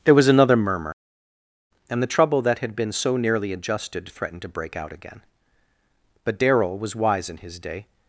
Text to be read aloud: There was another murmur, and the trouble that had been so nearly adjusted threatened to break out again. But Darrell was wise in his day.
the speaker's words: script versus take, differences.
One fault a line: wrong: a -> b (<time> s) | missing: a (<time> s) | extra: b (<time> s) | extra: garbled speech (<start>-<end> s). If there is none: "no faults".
no faults